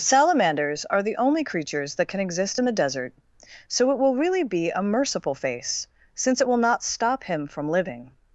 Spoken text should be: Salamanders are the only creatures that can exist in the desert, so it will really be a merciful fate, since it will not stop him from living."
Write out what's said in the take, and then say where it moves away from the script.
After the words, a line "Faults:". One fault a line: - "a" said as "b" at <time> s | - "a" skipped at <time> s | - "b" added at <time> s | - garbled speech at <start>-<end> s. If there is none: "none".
Salamanders are the only creatures that can exist in the desert, so it will really be a merciful face, since it will not stop him from living."
Faults:
- "fate" said as "face" at 5.3 s